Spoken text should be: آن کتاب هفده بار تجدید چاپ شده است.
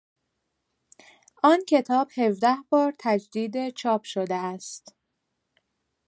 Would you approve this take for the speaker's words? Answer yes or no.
yes